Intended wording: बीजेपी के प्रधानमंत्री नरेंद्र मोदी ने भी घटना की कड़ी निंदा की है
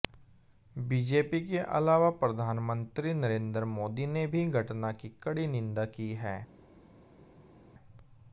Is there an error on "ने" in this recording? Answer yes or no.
no